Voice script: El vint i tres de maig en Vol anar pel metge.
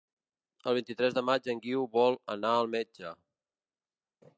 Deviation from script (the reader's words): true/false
true